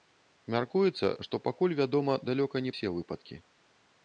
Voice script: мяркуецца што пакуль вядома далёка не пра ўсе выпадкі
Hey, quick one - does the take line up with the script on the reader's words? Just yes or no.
no